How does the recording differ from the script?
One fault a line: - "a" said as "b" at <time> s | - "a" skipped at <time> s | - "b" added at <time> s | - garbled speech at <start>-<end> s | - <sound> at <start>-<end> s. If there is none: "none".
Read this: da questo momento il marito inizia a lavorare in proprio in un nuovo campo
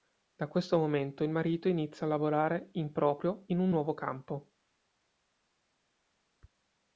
none